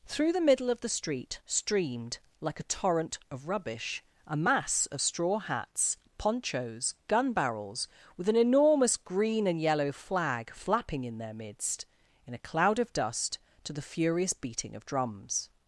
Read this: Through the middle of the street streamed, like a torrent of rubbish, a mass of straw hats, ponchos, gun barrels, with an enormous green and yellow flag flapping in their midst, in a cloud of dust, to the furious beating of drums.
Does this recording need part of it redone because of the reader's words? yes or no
no